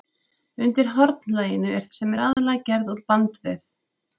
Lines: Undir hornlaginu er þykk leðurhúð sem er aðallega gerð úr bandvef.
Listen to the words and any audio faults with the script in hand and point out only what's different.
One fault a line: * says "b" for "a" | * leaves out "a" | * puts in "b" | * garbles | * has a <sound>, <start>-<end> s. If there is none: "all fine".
* leaves out "þykk leðurhúð"
* has a dropout, 2.3-2.4 s